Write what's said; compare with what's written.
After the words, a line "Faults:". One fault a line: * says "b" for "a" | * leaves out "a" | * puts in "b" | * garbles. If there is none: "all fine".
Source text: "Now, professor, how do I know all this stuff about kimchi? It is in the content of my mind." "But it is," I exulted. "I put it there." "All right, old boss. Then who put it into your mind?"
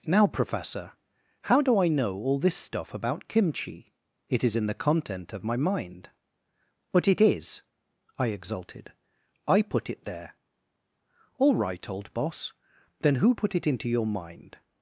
"Now, professor, how do I know all this stuff about kimchi? It is in the content of my mind." "But it is," I exulted. "I put it there." "All right, old boss. Then who put it into your mind?"
Faults:
all fine